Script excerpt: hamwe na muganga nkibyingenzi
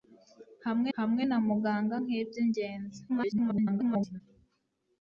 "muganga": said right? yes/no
yes